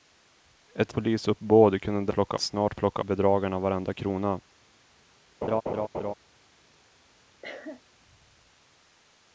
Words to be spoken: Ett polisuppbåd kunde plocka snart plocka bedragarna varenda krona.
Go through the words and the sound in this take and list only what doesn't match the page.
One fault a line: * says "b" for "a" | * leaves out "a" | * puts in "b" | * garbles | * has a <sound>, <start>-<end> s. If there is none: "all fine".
* has a laugh, 5.4-6.1 s
* has a cough, 7.4-7.8 s